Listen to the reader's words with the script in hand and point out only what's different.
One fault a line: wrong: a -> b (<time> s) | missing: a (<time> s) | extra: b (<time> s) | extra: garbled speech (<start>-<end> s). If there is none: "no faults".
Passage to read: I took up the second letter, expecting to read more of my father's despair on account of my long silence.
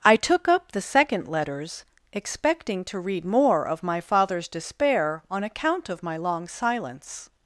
wrong: letter -> letters (1.3 s)